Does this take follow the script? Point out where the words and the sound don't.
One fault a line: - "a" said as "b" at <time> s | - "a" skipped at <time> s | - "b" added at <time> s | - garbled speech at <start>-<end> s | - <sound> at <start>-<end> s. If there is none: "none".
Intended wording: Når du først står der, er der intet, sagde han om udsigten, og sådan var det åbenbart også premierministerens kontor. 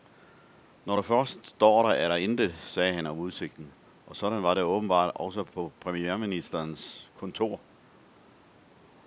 - "på" added at 5.4 s